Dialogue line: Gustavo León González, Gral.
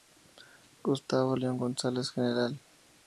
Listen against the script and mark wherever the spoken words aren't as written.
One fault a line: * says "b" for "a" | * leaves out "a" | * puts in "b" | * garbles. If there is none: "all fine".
all fine